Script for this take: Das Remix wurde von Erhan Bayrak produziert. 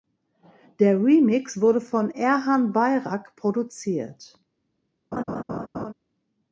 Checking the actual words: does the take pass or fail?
fail